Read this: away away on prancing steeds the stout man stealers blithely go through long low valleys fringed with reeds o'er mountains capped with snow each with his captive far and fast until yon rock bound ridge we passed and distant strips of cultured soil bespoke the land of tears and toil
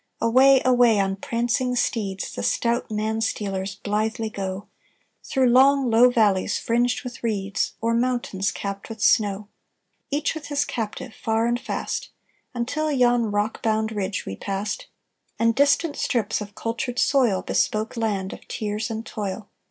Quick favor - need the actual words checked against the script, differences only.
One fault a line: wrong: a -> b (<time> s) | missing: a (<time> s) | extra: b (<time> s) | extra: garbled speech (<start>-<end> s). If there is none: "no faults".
missing: the (18.0 s)